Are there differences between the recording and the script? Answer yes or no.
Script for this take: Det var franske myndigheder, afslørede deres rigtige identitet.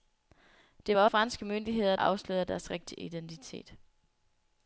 no